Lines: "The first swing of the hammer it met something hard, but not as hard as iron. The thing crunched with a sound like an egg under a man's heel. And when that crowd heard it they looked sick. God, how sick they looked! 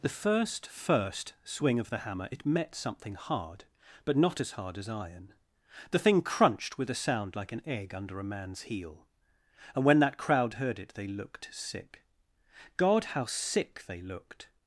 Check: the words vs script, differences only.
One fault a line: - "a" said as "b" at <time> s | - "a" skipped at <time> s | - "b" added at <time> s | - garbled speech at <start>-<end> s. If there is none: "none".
- "first" added at 0.7 s